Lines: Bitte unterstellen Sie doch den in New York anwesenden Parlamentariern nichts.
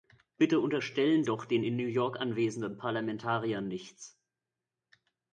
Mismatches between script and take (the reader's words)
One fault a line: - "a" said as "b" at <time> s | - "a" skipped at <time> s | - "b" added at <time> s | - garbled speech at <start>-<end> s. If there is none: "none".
- "Sie" skipped at 1.2 s